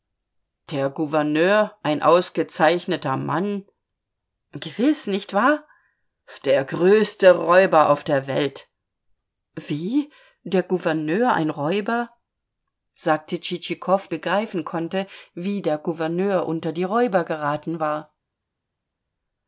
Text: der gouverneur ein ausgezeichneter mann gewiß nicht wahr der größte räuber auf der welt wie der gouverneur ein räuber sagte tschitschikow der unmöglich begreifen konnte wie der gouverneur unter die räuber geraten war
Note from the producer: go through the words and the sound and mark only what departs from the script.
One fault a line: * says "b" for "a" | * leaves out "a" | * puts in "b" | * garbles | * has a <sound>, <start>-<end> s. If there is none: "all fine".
* leaves out "der unmöglich"